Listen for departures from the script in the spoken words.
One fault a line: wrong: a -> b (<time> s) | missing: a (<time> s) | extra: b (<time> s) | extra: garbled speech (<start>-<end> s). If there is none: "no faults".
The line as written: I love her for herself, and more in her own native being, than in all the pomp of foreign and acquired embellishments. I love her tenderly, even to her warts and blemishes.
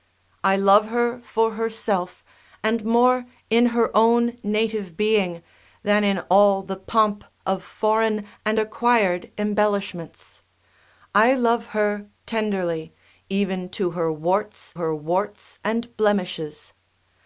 extra: her warts (14.7 s)